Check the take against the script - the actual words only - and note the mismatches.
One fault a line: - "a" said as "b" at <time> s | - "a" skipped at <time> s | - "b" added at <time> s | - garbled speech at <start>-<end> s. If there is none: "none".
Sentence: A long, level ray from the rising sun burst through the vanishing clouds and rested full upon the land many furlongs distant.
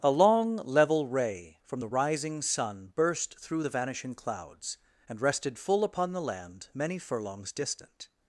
none